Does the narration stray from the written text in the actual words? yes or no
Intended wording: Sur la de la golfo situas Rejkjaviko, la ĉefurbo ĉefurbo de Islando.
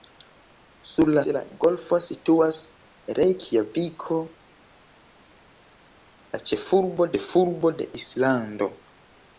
no